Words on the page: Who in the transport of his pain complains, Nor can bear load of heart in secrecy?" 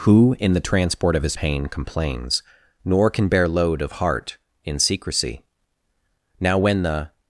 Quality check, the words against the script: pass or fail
fail